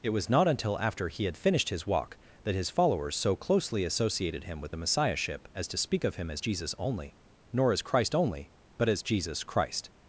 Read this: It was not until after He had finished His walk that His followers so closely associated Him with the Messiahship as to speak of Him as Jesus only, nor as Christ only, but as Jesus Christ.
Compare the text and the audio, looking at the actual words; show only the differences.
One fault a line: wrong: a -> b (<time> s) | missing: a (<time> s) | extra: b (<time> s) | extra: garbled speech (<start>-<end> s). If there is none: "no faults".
no faults